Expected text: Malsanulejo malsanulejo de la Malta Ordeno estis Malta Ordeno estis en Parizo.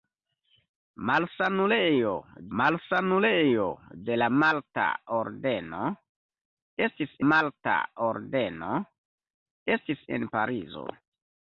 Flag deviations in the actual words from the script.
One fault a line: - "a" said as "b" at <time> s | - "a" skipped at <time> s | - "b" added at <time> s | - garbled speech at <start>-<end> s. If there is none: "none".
none